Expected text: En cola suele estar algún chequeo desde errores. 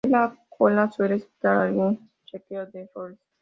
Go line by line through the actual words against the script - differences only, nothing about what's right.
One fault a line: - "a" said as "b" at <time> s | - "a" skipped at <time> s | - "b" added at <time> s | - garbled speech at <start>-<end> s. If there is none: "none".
- "la" added at 0.1 s
- "desde" said as "de" at 2.7 s